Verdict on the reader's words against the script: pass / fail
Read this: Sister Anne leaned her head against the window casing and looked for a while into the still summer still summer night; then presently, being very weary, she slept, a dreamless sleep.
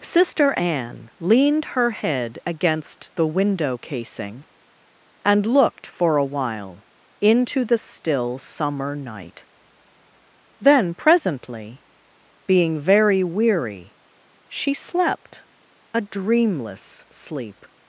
fail